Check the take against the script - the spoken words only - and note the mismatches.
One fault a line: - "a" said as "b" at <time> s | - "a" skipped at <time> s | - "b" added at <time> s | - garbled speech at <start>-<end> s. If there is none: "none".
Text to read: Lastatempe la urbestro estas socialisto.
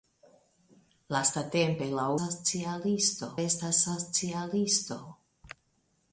- "urbestro" said as "socialisto" at 2.2 s